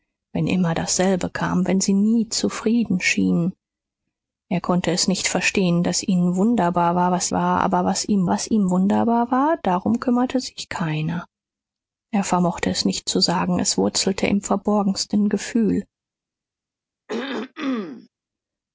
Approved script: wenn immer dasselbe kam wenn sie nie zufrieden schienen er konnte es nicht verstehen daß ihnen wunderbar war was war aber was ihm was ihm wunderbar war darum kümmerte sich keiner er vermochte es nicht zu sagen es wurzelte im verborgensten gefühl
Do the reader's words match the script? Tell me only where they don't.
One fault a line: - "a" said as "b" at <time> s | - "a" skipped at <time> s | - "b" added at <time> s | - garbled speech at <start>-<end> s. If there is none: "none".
none